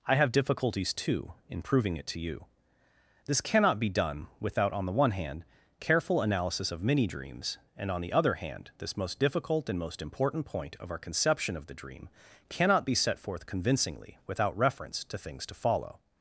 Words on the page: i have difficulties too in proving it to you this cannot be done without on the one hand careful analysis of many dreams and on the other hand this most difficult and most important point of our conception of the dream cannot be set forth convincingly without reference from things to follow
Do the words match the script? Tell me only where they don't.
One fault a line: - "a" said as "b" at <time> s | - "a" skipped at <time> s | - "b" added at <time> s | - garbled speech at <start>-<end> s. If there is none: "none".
- "from" said as "to" at 15.0 s